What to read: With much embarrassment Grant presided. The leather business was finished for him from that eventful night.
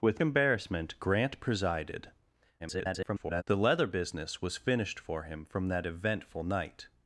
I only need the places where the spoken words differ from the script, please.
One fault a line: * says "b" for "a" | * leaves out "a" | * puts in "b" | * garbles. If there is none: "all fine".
* leaves out "much"
* garbles